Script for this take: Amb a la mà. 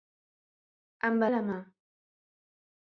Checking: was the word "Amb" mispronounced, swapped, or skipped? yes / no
no